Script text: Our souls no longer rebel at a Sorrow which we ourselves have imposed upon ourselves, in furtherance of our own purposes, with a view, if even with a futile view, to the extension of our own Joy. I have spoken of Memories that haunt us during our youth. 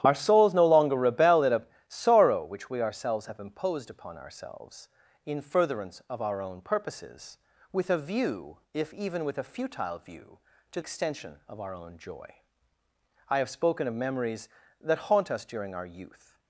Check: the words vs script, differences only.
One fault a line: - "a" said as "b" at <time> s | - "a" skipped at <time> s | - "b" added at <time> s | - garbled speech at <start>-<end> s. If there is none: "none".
- "the" skipped at 10.8 s